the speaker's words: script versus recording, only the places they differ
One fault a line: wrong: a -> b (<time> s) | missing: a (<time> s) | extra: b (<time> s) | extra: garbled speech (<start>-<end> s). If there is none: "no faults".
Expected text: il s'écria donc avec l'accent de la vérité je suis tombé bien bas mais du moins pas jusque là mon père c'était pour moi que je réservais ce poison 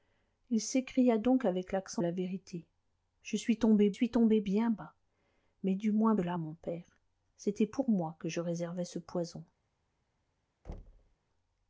missing: de (2.0 s)
extra: suis tombé (3.9 s)
missing: pas jusque (6.2 s)